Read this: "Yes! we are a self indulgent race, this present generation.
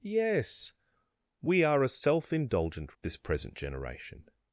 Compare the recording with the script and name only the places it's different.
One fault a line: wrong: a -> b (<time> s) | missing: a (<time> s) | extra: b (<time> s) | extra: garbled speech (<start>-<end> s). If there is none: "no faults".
missing: race (3.0 s)